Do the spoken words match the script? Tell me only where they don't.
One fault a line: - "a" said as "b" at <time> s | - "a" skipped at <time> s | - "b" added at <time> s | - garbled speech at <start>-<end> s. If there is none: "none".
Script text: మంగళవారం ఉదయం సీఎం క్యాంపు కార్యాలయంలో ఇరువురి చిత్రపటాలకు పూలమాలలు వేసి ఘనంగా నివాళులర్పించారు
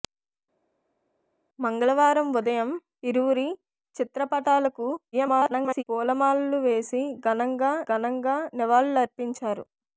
- "సీఎం క్యాంపు కార్యాలయంలో" skipped at 2.7 s
- garbled speech at 5.1-5.8 s
- "ఘనంగా" added at 7.9 s